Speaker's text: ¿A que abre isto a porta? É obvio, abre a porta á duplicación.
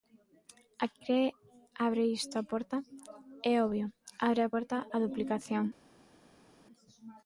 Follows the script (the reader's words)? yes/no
yes